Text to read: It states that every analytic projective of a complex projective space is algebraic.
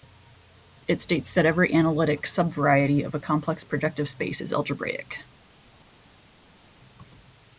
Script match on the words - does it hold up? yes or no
no